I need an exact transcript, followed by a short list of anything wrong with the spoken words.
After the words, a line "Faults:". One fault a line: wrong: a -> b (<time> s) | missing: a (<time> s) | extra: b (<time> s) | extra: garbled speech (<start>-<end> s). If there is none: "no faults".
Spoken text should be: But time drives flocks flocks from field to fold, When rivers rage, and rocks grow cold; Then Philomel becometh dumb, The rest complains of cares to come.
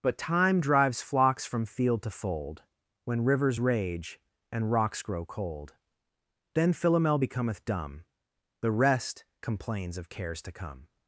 But time drives flocks from field to fold, When rivers rage, and rocks grow cold; Then Philomel becometh dumb, The rest complains of cares to come.
Faults:
missing: flocks (1.5 s)